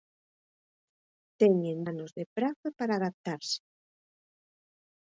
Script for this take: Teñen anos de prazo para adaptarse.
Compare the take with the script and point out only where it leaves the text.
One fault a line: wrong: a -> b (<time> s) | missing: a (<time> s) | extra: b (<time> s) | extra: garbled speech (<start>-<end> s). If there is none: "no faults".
no faults